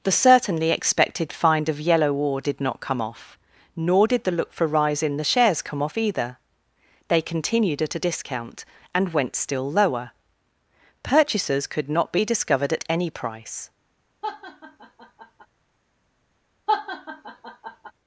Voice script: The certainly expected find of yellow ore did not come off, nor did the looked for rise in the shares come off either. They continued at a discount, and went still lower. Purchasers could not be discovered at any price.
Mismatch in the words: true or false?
true